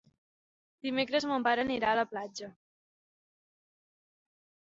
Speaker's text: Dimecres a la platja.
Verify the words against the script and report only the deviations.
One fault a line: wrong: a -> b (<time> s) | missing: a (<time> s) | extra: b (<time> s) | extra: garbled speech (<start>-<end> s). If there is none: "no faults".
extra: mon pare anirà (1.3 s)